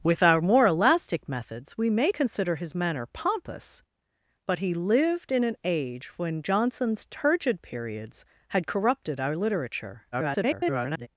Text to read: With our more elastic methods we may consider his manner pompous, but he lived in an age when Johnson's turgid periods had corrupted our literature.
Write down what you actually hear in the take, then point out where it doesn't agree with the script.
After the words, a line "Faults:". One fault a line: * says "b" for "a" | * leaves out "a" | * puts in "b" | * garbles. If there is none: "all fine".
With our more elastic methods we may consider his manner pompous, but he lived in an age when Johnson's turgid periods had corrupted our literature. [garbled]
Faults:
* garbles